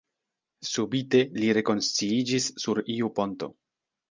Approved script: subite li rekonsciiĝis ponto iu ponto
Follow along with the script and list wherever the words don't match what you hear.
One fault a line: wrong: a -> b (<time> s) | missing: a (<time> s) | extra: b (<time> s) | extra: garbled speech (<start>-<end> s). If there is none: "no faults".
wrong: ponto -> sur (2.7 s)